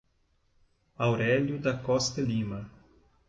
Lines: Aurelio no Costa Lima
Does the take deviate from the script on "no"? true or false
true